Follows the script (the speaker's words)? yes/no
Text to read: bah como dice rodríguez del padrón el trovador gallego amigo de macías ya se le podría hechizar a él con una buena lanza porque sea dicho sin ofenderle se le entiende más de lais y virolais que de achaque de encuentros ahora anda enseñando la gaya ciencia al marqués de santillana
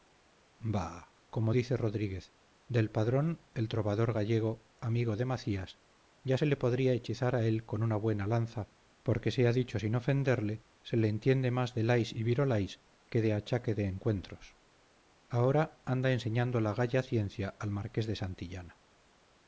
yes